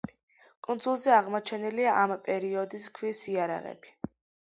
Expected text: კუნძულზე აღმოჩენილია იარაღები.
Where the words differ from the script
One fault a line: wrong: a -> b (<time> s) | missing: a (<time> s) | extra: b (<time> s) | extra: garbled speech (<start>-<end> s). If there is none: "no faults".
extra: ამ პერიოდის ქვის (2.1 s)